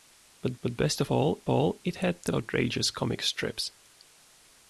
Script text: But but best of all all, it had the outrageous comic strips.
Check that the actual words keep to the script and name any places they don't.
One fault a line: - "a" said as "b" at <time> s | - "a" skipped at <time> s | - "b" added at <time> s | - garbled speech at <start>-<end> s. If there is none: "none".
none